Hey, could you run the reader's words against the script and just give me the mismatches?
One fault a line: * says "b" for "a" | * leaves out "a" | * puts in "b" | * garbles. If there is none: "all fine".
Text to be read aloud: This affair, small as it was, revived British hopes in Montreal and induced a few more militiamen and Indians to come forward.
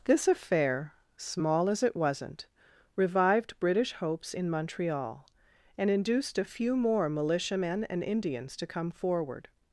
* says "wasn't" for "was"